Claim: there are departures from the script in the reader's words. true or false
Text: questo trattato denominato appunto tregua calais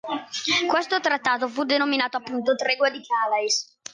true